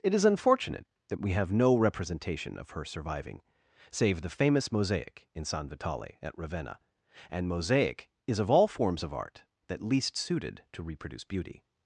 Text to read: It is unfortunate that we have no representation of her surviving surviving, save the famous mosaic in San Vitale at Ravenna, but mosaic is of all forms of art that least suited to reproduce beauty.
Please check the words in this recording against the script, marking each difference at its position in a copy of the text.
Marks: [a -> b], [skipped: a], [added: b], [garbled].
It is unfortunate that we have no representation of her surviving [skipped: surviving,] save the famous mosaic in San Vitale at Ravenna, [but -> and] mosaic is of all forms of art that least suited to reproduce beauty.